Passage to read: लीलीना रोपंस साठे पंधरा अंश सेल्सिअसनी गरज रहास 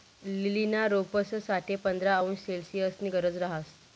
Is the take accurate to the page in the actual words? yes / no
yes